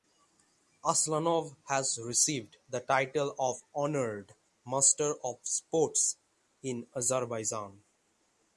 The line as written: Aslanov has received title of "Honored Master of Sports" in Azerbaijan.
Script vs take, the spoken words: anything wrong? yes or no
yes